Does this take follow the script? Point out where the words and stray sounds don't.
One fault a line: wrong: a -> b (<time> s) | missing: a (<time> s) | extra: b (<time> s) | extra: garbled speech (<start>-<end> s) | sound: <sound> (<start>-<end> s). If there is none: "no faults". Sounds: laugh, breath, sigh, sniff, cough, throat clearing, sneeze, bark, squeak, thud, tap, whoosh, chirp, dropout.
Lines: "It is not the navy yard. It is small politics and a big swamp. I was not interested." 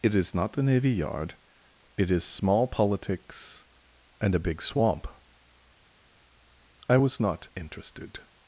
no faults